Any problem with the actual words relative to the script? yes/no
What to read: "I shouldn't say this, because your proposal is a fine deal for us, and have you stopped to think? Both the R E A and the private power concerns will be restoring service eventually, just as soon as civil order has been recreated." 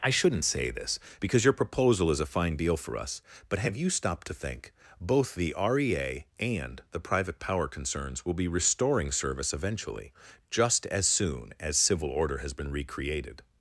yes